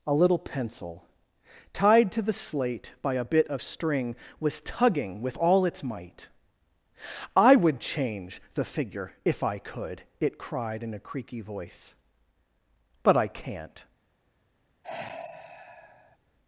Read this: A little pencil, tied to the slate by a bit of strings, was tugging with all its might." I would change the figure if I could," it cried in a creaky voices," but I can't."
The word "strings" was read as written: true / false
false